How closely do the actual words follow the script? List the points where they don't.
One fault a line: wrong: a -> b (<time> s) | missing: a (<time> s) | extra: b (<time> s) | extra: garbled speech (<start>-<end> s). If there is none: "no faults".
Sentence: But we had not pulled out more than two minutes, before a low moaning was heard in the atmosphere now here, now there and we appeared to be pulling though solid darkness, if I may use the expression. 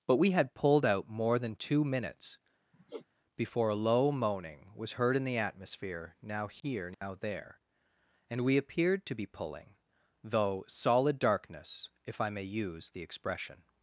missing: not (0.5 s)